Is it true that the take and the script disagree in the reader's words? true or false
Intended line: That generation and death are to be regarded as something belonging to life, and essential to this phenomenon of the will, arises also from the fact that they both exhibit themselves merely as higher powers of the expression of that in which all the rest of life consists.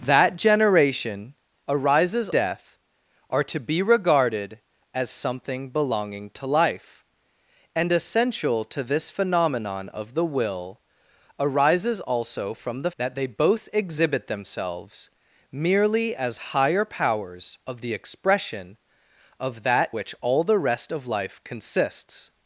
true